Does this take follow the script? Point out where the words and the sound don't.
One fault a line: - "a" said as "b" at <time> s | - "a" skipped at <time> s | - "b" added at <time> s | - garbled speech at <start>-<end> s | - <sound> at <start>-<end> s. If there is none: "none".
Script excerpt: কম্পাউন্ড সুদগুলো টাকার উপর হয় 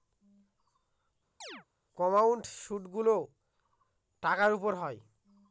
- chirp at 1.4-1.7 s